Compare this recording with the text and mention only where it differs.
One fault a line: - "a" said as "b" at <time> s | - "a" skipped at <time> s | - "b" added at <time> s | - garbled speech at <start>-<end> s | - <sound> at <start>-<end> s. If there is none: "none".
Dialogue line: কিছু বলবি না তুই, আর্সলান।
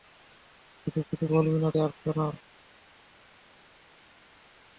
- "কিছু" added at 1.1 s
- "তুই" skipped at 1.7 s